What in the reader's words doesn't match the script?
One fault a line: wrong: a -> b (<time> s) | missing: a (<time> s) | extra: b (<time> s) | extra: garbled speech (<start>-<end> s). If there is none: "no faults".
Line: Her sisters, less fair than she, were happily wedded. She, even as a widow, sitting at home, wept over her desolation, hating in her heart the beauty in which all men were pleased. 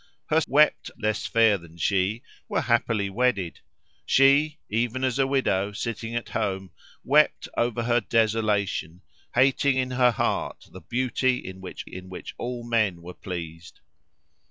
wrong: sisters -> wept (0.5 s)
extra: in which (11.8 s)